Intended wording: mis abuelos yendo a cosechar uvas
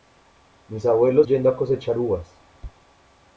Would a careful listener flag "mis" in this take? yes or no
no